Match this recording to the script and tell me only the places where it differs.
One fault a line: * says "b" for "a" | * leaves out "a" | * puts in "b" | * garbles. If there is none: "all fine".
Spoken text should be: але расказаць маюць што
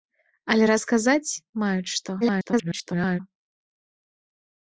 * garbles